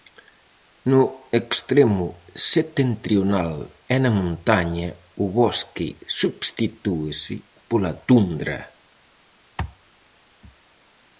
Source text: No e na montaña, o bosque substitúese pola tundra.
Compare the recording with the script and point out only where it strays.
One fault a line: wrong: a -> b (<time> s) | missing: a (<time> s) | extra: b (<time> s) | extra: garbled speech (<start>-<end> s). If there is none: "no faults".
extra: extremo setentrional (1.4 s)